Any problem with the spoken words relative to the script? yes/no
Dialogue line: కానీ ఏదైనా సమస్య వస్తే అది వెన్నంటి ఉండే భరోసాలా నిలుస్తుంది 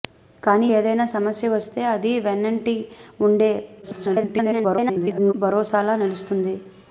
yes